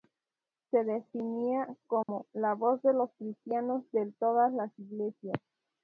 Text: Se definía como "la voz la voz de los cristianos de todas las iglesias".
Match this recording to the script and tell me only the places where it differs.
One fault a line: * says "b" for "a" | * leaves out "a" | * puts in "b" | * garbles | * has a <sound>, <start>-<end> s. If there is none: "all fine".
* has a dropout, 2.0-2.1 s
* leaves out "la voz"